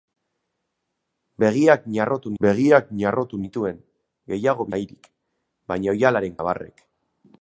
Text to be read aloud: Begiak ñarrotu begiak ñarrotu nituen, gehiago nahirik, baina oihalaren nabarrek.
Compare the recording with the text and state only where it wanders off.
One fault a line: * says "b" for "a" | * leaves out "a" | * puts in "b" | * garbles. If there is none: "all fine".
all fine